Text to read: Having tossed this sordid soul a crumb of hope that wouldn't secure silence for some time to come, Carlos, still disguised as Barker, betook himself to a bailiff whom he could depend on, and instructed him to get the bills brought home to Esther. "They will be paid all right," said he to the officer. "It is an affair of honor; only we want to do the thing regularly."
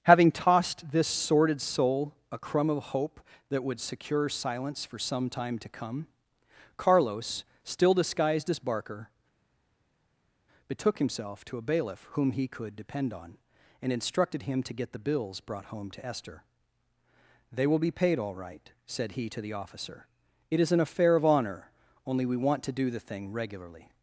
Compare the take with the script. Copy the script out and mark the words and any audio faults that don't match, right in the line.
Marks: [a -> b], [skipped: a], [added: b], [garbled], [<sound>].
Having tossed this sordid soul a crumb of hope that [wouldn't -> would] secure silence for some time to come, Carlos, still disguised as Barker, betook himself to a bailiff whom he could depend on, and instructed him to get the bills brought home to Esther. "They will be paid all right," said he to the officer. "It is an affair of honor; only we want to do the thing regularly."